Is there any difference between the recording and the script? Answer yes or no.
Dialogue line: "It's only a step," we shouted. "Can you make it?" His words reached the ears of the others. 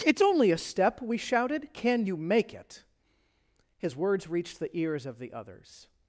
no